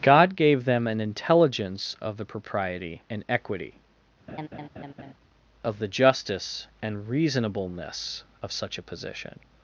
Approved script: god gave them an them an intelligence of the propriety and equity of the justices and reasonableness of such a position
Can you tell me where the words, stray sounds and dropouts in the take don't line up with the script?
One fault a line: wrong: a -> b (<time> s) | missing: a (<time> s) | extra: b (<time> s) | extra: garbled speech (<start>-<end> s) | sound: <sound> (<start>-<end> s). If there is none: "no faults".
missing: them an (1.0 s)
sound: laugh (4.3-5.1 s)
wrong: justices -> justice (5.9 s)